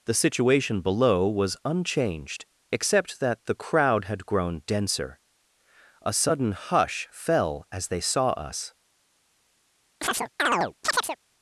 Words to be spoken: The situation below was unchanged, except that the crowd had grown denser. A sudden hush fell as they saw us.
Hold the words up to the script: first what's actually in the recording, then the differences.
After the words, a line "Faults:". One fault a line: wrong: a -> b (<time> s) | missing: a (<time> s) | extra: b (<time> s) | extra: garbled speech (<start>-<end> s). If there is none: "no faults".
The situation below was unchanged, except that the crowd had grown denser. A sudden hush fell as they saw us.
Faults:
no faults